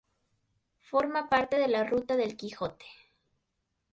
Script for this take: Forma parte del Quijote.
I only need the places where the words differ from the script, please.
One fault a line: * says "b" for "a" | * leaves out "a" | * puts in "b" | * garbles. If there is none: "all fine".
* puts in "de la Ruta"